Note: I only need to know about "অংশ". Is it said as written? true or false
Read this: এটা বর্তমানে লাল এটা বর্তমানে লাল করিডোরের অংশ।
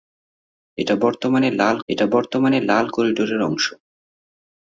true